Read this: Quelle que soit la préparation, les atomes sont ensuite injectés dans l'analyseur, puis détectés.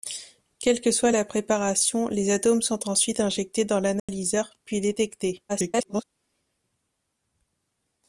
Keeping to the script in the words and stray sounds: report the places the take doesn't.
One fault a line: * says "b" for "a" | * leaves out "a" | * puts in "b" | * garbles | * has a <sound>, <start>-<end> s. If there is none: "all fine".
* has a dropout, 4.0-4.1 s
* garbles